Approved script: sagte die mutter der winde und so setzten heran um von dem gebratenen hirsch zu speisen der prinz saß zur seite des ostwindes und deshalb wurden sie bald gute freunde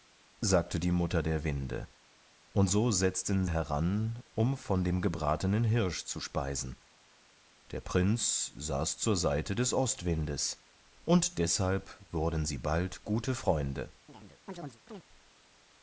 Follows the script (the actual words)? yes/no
yes